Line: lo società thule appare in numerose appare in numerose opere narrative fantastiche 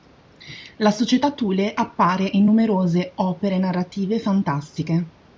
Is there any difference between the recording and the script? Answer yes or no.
yes